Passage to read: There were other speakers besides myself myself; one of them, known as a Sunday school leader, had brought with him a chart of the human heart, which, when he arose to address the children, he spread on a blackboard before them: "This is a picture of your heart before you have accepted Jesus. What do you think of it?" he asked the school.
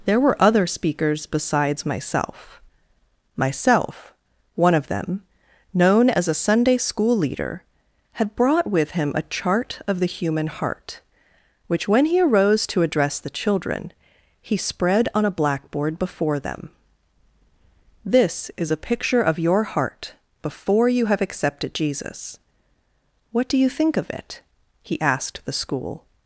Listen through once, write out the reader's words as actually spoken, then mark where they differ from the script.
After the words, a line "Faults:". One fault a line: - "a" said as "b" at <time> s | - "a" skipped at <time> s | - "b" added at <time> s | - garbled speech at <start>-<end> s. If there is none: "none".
There were other speakers besides myself myself; one of them, known as a Sunday school leader, had brought with him a chart of the human heart, which, when he arose to address the children, he spread on a blackboard before them: "This is a picture of your heart before you have accepted Jesus. What do you think of it?" he asked the school.
Faults:
none